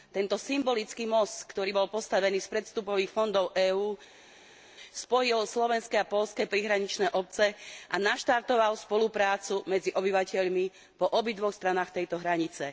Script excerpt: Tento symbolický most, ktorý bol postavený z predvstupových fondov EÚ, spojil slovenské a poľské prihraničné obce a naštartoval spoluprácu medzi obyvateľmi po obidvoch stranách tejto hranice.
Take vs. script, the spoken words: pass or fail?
pass